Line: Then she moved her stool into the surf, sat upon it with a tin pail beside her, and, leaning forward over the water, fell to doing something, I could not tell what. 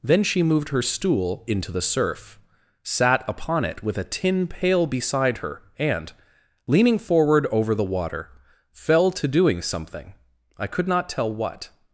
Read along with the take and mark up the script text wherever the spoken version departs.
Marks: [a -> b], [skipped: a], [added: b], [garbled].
Then she moved her stool into the surf, sat upon it with a tin pail beside her, and, leaning forward over the water, fell to doing something, I could not tell what.